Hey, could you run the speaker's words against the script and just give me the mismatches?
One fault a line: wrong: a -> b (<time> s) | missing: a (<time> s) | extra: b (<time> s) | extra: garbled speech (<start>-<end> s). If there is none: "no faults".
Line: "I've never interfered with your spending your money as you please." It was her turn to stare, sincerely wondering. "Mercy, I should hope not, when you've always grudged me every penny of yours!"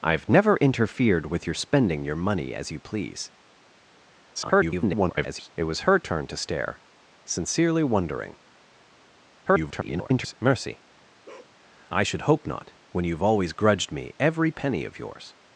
extra: garbled speech (4.3-5.5 s)
extra: garbled speech (9.5-10.3 s)